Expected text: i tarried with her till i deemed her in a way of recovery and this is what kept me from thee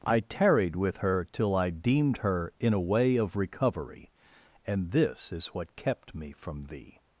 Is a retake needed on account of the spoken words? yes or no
no